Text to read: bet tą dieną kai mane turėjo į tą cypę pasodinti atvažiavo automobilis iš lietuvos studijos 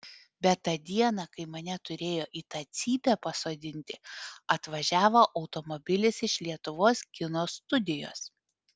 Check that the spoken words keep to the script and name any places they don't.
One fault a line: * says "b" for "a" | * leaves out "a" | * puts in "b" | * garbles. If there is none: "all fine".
* puts in "kino"